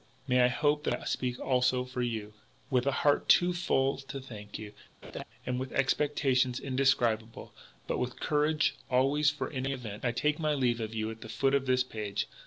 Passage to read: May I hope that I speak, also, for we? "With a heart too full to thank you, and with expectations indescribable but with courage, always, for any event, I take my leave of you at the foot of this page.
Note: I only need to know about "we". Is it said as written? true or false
false